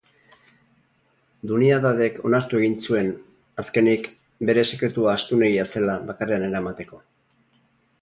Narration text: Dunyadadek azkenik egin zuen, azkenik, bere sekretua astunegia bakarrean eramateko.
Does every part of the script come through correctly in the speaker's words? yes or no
no